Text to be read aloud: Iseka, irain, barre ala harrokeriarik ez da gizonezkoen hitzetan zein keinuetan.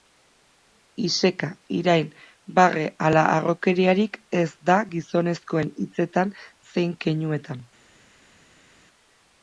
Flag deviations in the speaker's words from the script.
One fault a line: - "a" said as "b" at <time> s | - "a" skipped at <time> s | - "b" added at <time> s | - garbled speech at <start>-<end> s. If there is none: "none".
none